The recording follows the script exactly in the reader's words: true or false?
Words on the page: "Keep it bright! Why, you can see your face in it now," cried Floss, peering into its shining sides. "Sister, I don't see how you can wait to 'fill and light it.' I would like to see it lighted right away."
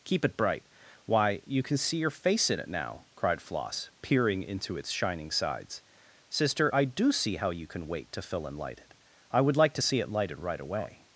false